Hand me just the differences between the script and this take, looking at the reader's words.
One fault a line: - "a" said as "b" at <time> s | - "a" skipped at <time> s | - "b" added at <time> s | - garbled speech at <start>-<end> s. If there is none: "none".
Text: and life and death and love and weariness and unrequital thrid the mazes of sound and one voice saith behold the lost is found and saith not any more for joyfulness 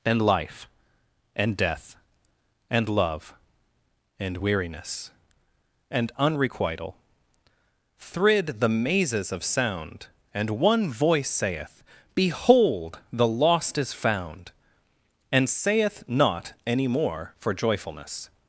none